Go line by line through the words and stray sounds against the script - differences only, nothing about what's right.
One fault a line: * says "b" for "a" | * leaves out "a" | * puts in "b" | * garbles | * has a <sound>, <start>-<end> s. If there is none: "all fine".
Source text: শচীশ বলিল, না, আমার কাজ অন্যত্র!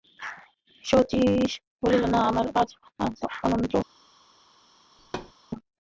* has a thud, 5.0-5.3 s